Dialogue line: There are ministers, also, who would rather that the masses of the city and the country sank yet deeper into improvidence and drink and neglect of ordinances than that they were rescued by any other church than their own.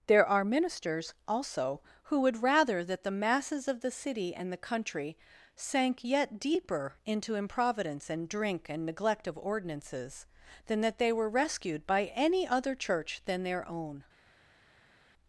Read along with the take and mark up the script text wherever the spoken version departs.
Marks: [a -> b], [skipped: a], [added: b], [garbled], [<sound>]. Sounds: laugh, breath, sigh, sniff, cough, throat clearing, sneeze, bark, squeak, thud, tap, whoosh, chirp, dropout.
There are ministers, also, who would rather that the masses of the city and the country sank yet deeper into improvidence and drink and neglect of ordinances than that they were rescued by any other church than their own.